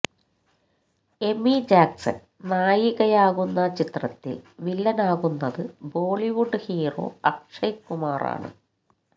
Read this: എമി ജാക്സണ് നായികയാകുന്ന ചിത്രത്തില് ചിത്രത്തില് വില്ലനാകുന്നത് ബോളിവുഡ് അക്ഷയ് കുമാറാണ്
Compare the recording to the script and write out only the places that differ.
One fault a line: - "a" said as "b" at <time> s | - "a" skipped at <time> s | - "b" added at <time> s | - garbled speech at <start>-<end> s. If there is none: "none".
- "ചിത്രത്തില്" skipped at 4.4 s
- "ഹീറോ" added at 6.7 s